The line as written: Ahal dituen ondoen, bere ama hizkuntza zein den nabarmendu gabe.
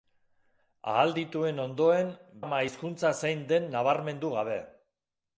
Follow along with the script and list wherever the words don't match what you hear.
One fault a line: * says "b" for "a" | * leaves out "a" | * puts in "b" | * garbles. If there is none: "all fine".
* leaves out "bere"